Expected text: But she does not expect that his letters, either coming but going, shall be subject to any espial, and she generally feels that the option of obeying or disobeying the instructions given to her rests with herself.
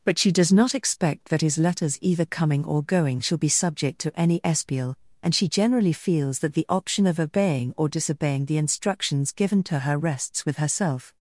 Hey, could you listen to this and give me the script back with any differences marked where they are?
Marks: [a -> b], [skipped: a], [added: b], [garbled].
But she does not expect that his letters, either coming [but -> or] going, shall be subject to any espial, and she generally feels that the option of obeying or disobeying the instructions given to her rests with herself.